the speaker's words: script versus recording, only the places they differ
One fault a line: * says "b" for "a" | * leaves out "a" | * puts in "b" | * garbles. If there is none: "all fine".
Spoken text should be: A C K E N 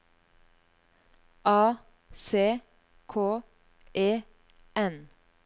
all fine